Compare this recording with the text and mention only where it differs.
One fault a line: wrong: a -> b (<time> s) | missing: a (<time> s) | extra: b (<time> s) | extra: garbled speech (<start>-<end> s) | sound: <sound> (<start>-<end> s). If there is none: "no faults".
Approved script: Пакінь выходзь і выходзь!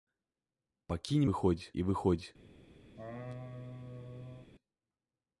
sound: laugh (3.0-4.5 s)